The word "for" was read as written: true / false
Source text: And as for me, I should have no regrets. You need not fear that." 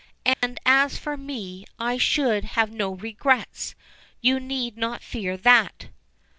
true